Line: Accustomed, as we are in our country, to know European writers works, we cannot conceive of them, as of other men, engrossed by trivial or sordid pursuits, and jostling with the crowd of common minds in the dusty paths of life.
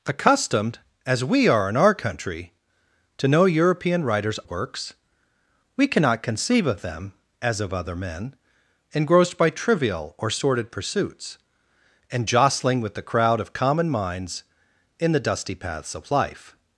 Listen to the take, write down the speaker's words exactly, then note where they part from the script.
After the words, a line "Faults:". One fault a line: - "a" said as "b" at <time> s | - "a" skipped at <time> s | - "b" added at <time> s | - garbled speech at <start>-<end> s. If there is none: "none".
Accustomed, as we are in our country, to know European writers works, we cannot conceive of them, as of other men, engrossed by trivial or sordid pursuits, and jostling with the crowd of common minds in the dusty paths of life.
Faults:
none